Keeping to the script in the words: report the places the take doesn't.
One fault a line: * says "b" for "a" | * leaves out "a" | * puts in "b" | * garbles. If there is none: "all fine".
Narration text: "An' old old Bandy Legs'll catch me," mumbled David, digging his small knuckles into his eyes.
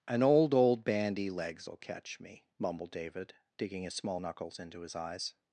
all fine